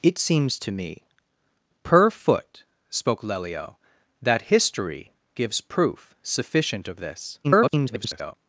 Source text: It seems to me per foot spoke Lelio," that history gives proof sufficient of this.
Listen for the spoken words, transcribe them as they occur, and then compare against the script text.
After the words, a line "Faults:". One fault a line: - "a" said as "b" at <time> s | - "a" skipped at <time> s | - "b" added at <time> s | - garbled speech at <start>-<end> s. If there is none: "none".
It seems to me per foot spoke Lelio," that history gives proof sufficient of this. [garbled]
Faults:
- garbled speech at 7.4-8.3 s